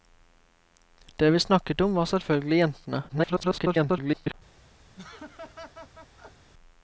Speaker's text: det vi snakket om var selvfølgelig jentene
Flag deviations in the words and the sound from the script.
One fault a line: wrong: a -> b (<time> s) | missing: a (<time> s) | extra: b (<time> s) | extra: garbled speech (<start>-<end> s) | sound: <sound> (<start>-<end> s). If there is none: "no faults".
extra: garbled speech (3.1-4.3 s)
sound: laugh (4.9-6.5 s)